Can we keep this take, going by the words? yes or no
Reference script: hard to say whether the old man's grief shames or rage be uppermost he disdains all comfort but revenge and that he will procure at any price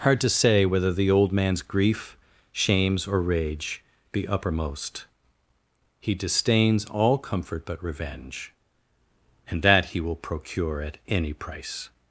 yes